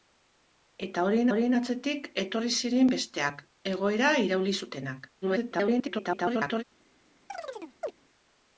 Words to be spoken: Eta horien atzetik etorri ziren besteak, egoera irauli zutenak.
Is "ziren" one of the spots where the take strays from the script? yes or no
no